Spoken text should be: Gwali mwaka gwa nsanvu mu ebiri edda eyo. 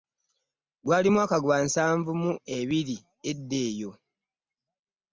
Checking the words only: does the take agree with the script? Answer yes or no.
yes